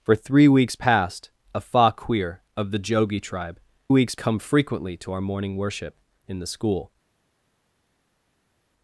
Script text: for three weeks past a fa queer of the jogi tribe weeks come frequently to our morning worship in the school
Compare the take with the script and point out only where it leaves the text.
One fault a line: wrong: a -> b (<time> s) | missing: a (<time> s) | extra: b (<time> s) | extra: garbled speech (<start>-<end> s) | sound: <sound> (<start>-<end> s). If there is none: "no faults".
no faults